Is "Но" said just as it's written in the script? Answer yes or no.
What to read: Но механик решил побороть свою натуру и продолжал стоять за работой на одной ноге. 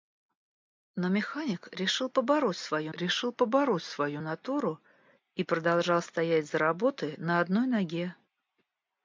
yes